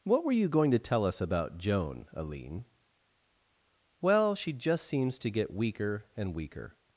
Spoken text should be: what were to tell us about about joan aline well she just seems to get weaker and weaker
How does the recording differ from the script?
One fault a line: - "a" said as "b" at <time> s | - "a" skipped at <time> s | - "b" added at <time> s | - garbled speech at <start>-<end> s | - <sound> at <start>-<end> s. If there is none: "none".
- "you going" added at 0.3 s
- "about" skipped at 1.6 s